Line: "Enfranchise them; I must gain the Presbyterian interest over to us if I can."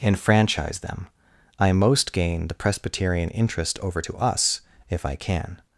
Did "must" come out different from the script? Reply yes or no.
yes